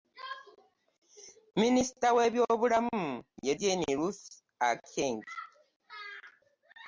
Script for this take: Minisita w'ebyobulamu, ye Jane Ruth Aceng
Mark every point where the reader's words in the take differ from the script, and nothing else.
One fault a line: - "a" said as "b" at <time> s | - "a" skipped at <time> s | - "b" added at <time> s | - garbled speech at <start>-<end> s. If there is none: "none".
none